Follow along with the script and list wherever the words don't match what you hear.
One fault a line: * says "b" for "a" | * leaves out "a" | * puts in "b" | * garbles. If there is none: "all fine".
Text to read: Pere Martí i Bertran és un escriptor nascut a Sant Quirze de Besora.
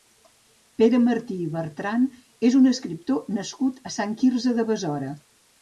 all fine